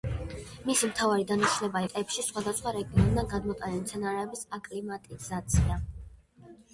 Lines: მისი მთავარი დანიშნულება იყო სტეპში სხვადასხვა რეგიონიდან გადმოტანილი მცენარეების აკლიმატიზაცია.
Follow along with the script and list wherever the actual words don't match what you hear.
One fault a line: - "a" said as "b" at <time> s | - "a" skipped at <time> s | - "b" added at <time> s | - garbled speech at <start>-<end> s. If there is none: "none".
- "იყო" skipped at 1.8 s